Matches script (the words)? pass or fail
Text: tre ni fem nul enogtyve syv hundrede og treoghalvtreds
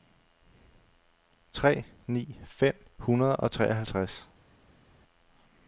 fail